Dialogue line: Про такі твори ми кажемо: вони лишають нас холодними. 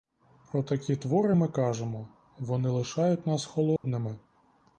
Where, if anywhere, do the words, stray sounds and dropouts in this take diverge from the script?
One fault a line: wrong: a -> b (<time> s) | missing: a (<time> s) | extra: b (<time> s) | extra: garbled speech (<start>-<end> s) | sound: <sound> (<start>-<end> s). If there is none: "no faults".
sound: dropout (3.8-3.8 s)